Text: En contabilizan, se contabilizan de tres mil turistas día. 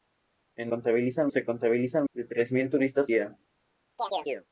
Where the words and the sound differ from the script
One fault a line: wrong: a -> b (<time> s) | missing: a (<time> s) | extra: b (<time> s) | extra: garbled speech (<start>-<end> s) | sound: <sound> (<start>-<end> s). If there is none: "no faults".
sound: chirp (4.0-4.5 s)